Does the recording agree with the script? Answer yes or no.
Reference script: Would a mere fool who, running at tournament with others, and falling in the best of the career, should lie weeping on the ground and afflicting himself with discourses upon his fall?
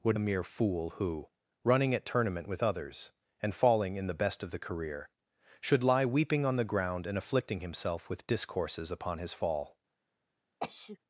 yes